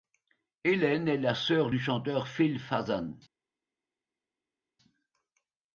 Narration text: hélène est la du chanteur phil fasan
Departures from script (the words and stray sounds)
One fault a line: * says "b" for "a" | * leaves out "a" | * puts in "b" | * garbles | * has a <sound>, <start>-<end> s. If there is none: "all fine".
* puts in "sœur"